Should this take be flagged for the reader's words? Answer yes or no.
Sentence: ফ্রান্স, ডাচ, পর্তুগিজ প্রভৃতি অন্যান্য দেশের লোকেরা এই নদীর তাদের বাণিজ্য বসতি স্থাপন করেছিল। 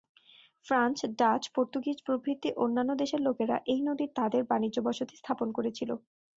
no